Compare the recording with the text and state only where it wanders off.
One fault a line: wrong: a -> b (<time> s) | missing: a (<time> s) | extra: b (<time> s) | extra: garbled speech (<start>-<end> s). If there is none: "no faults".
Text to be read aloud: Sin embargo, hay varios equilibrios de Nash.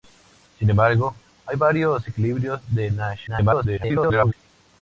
extra: garbled speech (3.3-4.3 s)